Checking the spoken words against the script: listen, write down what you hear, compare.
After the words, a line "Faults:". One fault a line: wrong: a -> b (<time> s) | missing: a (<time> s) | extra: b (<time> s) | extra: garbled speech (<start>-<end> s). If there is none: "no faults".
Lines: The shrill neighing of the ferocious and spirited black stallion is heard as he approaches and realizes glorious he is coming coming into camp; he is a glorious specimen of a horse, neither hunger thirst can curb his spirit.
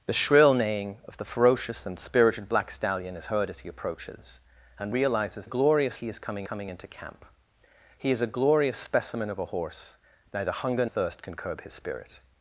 The shrill neighing of the ferocious and spirited black stallion is heard as he approaches and realizes glorious he is coming coming into camp; he is a glorious specimen of a horse, neither hunger thirst can curb his spirit.
Faults:
no faults